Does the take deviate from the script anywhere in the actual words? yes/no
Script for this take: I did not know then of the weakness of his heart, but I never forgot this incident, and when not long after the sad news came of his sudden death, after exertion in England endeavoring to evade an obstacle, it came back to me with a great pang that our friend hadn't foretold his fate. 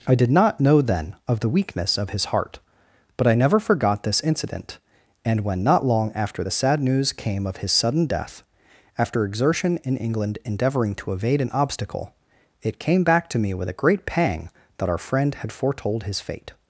yes